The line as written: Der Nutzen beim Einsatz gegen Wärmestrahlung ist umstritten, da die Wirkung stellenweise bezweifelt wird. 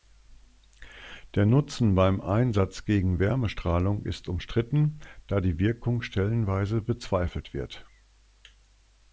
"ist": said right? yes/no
yes